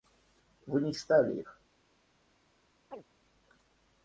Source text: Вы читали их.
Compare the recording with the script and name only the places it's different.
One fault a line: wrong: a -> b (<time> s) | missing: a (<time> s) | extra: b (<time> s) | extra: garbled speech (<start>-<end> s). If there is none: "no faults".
extra: не (0.8 s)